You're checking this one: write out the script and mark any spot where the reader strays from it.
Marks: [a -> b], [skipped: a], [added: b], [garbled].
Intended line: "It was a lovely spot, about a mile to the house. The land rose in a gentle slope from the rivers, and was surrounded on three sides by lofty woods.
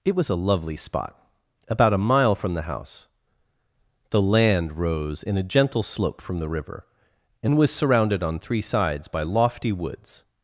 "It was a lovely spot, about a mile [to -> from] the house. The land rose in a gentle slope from the [rivers, -> river] and was surrounded on three sides by lofty woods.